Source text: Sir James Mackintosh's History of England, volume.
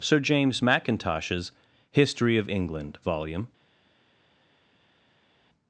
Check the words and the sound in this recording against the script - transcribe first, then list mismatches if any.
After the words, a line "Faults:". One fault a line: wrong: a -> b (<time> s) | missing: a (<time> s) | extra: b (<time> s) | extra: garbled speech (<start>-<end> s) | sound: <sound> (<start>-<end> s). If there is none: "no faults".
Sir James Mackintosh's History of England, volume.
Faults:
no faults